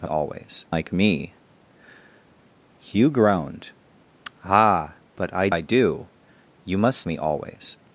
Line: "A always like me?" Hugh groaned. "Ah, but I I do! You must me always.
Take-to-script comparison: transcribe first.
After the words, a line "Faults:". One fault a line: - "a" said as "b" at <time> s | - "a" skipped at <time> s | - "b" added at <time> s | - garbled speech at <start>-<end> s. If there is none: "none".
"A always like me?" Hugh groaned. "Ah, but I I do! You must me always.
Faults:
none